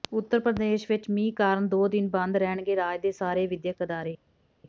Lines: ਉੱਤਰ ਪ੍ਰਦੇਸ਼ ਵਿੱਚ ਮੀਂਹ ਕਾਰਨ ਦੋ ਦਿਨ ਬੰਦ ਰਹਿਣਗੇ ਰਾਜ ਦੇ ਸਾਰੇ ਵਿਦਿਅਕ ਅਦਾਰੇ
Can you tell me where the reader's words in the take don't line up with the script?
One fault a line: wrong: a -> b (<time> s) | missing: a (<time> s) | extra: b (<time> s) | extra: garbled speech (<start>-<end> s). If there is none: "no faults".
no faults